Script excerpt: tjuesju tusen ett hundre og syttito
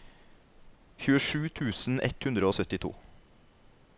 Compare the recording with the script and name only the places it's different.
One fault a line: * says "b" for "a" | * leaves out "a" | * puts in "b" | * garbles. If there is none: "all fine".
all fine